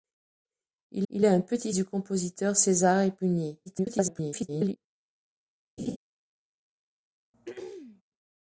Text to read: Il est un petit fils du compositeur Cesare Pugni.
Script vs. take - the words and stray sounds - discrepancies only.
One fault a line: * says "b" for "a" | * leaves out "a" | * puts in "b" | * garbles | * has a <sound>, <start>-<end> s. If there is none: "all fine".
* puts in "il"
* leaves out "fils"
* garbles
* has a laugh, 5.8-6.0 s
* has a throat clearing, 7.3-8.0 s